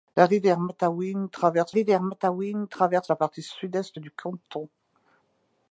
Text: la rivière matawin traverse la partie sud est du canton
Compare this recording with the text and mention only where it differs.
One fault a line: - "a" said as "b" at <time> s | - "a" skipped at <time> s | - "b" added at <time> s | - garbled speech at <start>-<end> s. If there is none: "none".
- "rivière matawin traverse" added at 1.7 s